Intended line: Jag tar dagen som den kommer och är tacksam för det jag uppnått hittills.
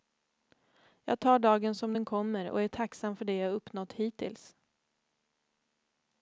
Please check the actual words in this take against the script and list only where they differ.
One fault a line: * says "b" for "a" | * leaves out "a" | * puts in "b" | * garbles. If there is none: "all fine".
all fine